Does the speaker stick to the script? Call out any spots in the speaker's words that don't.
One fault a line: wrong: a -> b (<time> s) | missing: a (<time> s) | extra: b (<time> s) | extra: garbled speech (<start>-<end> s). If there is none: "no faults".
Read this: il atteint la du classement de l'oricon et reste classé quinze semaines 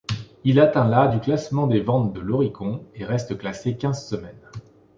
extra: des ventes (1.7 s)